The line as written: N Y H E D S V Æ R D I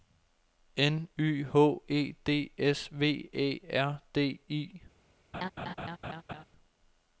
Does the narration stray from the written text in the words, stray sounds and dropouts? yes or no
yes